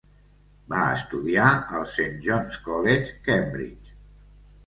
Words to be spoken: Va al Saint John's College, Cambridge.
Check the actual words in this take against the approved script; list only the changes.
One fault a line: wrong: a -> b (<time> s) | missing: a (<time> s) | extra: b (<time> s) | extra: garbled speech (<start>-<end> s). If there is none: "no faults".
extra: estudiar (0.9 s)